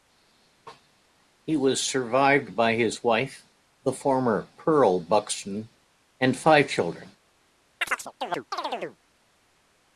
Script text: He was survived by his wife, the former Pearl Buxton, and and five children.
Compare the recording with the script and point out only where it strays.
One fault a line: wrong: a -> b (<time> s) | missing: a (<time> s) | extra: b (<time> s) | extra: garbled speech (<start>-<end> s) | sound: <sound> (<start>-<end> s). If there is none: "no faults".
missing: and (6.3 s)
sound: chirp (7.8-9.0 s)